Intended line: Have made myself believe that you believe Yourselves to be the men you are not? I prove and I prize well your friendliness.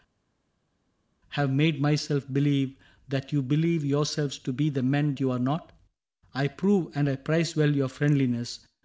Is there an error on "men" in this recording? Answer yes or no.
no